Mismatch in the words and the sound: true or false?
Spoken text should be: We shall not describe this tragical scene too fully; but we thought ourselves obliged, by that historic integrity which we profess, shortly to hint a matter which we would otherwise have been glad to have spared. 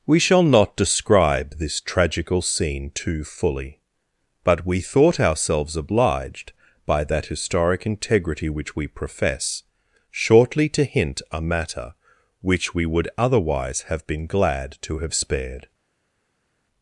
false